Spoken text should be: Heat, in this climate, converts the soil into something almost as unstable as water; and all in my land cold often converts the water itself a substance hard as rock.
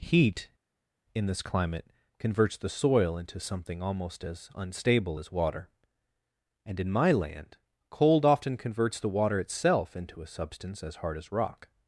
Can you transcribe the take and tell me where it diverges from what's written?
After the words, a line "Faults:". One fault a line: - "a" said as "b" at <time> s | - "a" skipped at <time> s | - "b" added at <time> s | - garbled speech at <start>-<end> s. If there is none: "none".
Heat, in this climate, converts the soil into something almost as unstable as water; and in my land cold often converts the water itself into a substance as hard as rock.
Faults:
- "all" skipped at 6.8 s
- "into" added at 9.9 s
- "as" added at 10.8 s